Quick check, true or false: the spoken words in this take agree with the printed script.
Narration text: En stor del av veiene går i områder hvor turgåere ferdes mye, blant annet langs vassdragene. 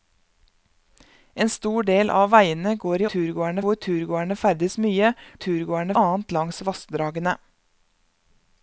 false